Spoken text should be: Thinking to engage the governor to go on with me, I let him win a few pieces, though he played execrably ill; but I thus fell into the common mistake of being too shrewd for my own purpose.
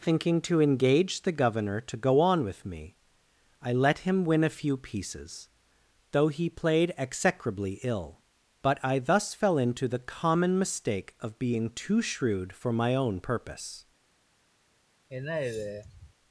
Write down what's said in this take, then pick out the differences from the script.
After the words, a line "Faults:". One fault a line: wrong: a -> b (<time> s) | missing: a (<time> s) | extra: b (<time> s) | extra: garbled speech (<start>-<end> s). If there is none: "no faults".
Thinking to engage the governor to go on with me, I let him win a few pieces, though he played execrably ill; but I thus fell into the common mistake of being too shrewd for my own purpose.
Faults:
no faults